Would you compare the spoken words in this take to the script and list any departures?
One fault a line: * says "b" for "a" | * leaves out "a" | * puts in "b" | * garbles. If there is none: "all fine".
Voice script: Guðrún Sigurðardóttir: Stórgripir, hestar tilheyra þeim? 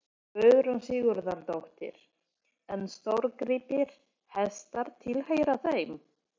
* puts in "En"